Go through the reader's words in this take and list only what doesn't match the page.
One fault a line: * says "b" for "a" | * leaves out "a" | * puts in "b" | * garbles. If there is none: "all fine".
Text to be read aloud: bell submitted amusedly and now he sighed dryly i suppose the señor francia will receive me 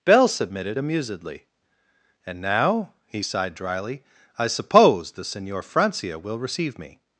all fine